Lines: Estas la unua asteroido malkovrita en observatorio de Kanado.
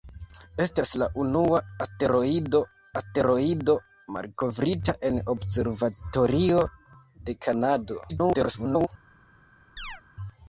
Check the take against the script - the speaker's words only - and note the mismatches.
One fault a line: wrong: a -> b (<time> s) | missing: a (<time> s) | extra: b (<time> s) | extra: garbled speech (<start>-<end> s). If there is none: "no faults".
extra: asteroido (3.0 s)
extra: garbled speech (8.1-8.9 s)